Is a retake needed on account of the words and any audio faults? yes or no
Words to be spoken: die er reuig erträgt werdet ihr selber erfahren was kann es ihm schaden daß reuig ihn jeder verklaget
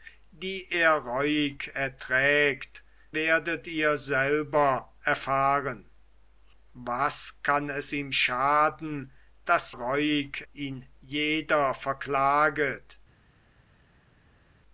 no